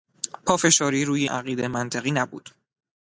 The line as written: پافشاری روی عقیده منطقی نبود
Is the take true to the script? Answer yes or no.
yes